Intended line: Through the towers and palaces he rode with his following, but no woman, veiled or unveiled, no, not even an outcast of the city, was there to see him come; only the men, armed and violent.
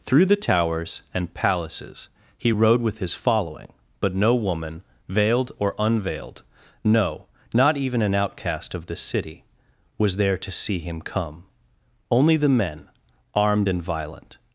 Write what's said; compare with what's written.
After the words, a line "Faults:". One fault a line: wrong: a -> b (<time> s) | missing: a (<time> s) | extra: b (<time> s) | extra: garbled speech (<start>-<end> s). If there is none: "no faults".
Through the towers and palaces he rode with his following, but no woman, veiled or unveiled, no, not even an outcast of the city, was there to see him come; only the men, armed and violent.
Faults:
no faults